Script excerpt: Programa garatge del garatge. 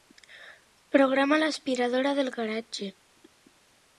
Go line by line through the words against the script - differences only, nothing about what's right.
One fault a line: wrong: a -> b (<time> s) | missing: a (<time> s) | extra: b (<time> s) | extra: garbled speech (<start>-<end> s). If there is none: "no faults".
wrong: garatge -> l'aspiradora (1.4 s)